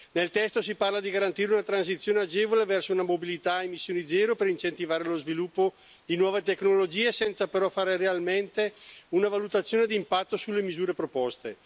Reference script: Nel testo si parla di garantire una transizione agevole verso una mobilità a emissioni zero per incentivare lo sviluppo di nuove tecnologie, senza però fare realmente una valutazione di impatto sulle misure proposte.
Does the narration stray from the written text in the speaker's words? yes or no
no